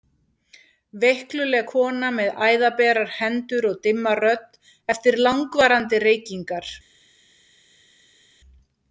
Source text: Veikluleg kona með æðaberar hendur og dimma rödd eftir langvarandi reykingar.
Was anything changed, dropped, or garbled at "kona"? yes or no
no